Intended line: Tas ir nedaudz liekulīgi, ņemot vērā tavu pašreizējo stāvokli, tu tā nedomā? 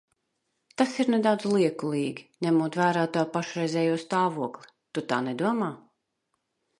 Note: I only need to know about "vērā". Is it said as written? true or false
true